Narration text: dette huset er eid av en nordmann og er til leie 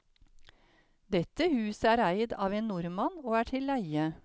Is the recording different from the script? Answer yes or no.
no